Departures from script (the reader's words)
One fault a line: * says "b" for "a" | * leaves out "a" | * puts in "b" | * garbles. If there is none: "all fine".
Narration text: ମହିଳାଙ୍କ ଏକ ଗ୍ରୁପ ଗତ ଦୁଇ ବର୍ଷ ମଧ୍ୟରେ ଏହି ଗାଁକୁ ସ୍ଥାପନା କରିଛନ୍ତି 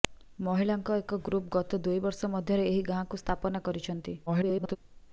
* garbles